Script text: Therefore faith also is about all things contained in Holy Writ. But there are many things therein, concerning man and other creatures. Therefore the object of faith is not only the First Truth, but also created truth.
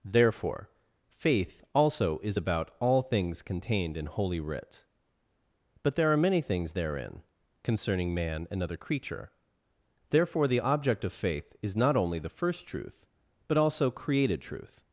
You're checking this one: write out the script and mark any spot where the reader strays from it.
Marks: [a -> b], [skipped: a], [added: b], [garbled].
Therefore faith also is about all things contained in Holy Writ. But there are many things therein, concerning man and other [creatures. -> creature] Therefore the object of faith is not only the First Truth, but also created truth.